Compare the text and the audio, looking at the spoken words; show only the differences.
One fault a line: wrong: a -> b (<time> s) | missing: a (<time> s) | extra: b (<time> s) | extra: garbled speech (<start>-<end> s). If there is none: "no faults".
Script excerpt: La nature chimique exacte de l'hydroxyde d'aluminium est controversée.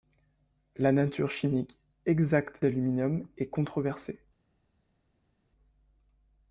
missing: de l'hydroxyde (2.6 s)